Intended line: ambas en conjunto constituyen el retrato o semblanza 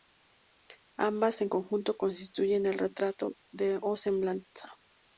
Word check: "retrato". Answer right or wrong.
right